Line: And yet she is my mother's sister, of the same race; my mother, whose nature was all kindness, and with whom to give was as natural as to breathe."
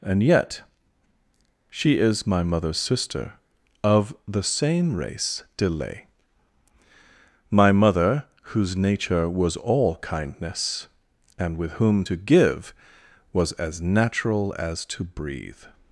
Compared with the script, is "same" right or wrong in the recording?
right